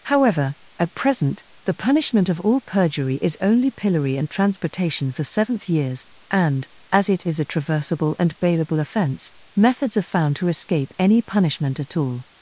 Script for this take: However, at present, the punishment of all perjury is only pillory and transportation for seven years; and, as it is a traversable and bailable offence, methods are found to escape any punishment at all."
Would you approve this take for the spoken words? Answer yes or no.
no